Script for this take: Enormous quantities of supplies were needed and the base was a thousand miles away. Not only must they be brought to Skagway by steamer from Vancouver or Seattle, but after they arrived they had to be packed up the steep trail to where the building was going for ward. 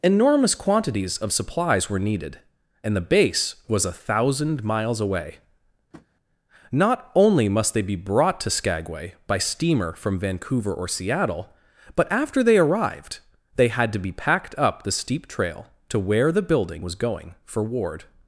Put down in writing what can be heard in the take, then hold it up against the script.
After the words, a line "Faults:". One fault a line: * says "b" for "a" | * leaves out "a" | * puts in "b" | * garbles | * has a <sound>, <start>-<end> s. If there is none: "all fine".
Enormous quantities of supplies were needed and the base was a thousand miles away. Not only must they be brought to Skagway by steamer from Vancouver or Seattle, but after they arrived they had to be packed up the steep trail to where the building was going for ward.
Faults:
* has a tap, 5.9-6.1 s